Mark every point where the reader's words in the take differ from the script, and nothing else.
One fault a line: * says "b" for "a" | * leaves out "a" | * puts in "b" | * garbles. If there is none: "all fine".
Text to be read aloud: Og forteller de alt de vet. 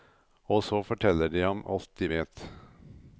* puts in "så"
* puts in "ham"